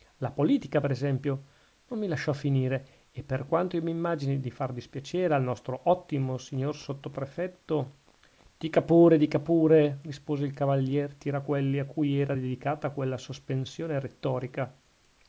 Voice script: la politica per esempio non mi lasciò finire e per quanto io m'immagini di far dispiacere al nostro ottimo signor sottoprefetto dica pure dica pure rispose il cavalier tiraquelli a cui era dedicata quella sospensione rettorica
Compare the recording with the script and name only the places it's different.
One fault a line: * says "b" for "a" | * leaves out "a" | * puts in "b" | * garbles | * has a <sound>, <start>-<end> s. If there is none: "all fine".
all fine